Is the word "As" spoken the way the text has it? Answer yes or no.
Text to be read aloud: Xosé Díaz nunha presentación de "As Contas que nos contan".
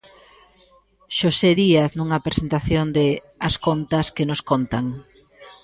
yes